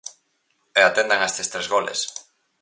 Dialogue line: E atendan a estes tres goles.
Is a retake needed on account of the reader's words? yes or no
no